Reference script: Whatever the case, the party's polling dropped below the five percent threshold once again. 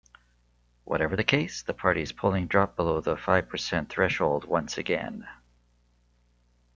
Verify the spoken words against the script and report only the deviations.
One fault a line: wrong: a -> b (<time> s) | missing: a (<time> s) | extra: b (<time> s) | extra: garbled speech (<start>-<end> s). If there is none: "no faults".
no faults